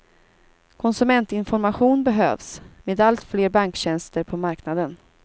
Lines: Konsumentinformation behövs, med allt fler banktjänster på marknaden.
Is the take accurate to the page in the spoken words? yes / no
yes